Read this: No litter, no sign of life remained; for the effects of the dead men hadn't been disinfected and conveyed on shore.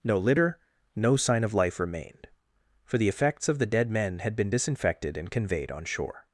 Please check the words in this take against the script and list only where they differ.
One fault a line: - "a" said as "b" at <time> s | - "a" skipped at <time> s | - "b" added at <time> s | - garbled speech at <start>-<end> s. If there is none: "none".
- "hadn't" said as "had" at 4.2 s